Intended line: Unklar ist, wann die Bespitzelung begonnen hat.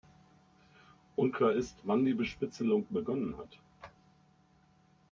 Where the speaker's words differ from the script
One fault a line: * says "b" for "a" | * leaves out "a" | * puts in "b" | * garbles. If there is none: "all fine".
all fine